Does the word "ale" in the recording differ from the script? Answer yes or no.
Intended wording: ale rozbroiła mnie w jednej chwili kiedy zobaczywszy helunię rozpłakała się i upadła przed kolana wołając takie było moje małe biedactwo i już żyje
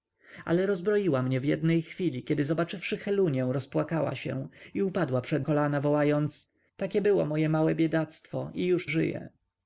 no